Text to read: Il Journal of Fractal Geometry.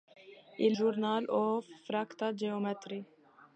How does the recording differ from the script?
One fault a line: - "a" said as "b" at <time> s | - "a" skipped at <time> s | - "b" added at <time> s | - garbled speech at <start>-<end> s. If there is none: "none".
none